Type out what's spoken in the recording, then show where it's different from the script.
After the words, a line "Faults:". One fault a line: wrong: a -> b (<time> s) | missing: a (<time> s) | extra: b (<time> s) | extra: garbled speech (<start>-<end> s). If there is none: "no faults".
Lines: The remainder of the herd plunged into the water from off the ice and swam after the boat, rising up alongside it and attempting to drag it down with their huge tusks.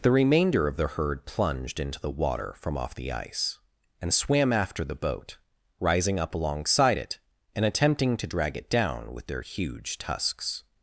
The remainder of the herd plunged into the water from off the ice and swam after the boat, rising up alongside it and attempting to drag it down with their huge tusks.
Faults:
no faults